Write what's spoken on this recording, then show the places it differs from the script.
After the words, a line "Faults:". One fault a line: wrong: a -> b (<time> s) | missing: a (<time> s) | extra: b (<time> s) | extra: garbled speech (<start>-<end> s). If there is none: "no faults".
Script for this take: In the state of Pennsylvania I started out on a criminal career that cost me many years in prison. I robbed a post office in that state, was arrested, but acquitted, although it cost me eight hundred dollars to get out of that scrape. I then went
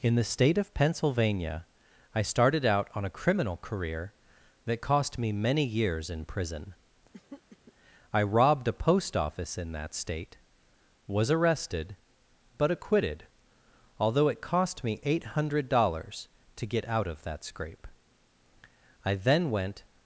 In the state of Pennsylvania I started out on a criminal career that cost me many years in prison. I robbed a post office in that state, was arrested, but acquitted, although it cost me eight hundred dollars to get out of that scrape. I then went
Faults:
no faults